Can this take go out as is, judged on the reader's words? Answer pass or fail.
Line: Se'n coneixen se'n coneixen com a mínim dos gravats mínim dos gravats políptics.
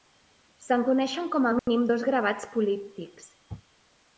fail